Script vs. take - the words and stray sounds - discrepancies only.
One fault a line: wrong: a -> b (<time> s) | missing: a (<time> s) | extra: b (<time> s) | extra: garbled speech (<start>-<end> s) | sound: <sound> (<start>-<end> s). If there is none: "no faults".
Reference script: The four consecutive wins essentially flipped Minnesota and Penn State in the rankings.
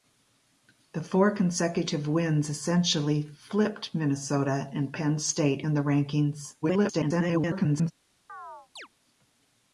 extra: garbled speech (6.6-7.9 s)
sound: chirp (8.3-8.9 s)